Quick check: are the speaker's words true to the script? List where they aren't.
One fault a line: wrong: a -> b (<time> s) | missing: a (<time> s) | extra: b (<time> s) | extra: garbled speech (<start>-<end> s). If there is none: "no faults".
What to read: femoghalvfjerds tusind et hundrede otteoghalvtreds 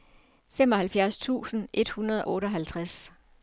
no faults